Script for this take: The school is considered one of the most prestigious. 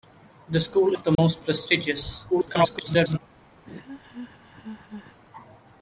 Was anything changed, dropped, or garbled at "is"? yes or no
yes